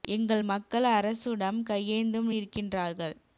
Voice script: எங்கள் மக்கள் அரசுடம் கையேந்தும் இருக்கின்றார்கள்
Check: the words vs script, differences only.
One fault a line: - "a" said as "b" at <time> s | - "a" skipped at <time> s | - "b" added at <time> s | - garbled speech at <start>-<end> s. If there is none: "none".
none